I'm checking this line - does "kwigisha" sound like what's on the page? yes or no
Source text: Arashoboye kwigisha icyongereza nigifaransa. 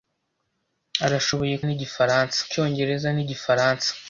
no